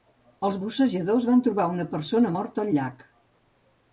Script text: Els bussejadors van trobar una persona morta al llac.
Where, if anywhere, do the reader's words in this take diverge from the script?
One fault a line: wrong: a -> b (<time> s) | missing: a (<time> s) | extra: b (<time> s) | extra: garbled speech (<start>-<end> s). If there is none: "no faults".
no faults